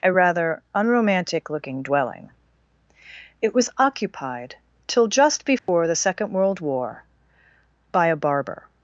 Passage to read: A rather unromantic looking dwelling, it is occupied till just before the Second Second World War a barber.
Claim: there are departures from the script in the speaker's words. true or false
true